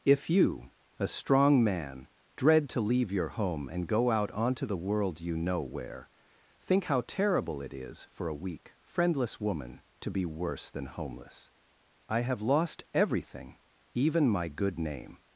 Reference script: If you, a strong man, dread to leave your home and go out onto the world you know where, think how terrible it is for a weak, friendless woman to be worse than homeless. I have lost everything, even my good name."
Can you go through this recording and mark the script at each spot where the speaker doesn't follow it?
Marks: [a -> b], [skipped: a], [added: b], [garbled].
If you, a strong man, dread to leave your home and go out onto the world you know where, think how terrible it is for a weak, friendless woman to be worse than homeless. I have lost everything, even my good name."